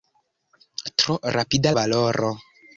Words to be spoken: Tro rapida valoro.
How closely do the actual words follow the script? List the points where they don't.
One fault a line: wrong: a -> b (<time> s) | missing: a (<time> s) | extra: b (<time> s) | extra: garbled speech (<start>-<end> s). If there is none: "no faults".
no faults